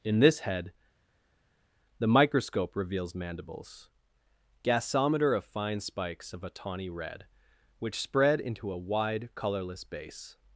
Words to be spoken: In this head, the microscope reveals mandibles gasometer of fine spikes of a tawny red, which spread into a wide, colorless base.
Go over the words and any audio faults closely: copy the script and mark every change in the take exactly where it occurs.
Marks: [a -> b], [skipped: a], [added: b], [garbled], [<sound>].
In this head, the microscope reveals mandibles gasometer of fine spikes of a tawny red, which spread into a wide, colorless base.